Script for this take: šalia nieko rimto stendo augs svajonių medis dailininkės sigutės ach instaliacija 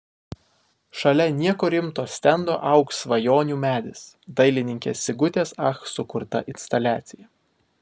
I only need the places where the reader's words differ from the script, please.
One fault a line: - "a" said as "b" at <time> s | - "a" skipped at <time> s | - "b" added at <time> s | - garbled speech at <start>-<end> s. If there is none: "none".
- "sukurta" added at 6.0 s